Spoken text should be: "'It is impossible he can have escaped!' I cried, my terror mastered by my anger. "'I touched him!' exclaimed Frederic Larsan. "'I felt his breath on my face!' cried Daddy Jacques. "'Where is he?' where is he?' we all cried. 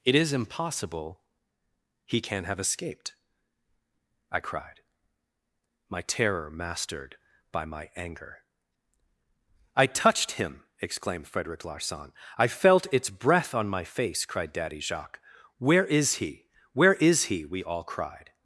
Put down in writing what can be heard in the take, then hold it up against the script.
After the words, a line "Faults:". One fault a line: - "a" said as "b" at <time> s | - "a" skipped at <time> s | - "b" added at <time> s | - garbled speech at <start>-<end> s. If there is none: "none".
"'It is impossible he can have escaped!' I cried, my terror mastered by my anger. "'I touched him!' exclaimed Frederic Larsan. "'I felt its breath on my face!' cried Daddy Jacques. "'Where is he?' where is he?' we all cried.
Faults:
- "his" said as "its" at 12.9 s